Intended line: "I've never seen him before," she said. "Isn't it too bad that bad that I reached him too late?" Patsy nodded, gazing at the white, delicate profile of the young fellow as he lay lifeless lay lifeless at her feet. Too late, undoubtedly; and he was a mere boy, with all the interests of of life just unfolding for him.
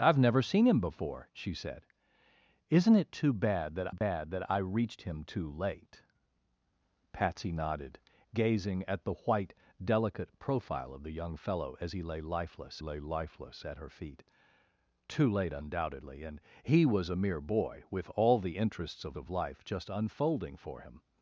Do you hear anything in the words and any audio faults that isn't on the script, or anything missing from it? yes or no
yes